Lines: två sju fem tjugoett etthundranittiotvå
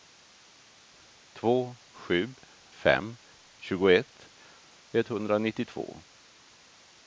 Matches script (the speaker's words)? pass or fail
pass